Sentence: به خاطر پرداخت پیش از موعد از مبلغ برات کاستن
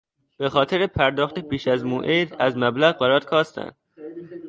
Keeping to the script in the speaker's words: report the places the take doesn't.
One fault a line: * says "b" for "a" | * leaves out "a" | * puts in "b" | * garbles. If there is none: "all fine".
all fine